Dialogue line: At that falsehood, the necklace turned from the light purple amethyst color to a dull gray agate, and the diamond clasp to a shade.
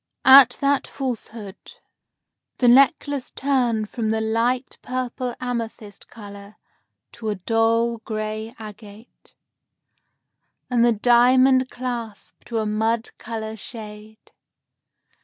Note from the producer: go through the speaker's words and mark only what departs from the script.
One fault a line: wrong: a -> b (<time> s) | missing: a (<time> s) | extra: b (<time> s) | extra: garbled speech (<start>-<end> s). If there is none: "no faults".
extra: mud color (12.7 s)